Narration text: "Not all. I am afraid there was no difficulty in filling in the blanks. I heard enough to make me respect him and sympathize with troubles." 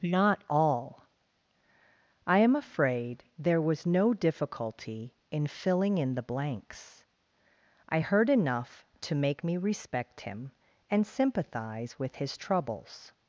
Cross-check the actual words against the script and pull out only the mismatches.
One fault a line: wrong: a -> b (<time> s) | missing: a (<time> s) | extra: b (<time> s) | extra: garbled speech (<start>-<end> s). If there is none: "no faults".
extra: his (12.2 s)